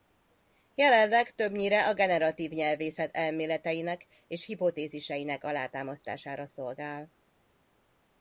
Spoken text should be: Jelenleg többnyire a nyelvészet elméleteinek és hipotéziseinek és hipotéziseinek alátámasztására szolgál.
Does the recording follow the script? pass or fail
fail